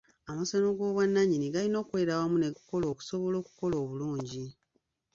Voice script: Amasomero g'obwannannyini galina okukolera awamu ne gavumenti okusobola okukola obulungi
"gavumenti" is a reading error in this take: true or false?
true